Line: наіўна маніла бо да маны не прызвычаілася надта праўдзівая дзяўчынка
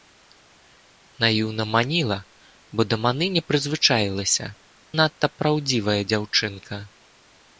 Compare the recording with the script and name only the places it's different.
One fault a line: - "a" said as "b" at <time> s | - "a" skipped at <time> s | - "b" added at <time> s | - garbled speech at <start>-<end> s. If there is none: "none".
none